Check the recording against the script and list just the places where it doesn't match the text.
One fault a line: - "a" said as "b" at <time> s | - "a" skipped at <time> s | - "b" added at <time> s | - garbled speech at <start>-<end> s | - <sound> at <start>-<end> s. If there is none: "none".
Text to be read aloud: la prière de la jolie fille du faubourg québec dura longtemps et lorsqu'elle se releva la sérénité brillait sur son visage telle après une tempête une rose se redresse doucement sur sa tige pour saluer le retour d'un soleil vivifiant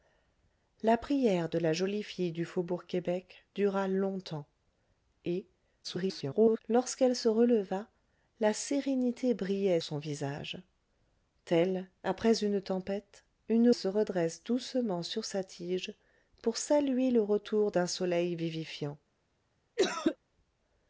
- garbled speech at 5.8-6.6 s
- "sur" skipped at 9.8 s
- "rose" skipped at 13.7 s
- cough at 19.8-20.2 s